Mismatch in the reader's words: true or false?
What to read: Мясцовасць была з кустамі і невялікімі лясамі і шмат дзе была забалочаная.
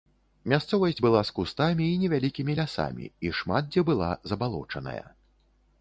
false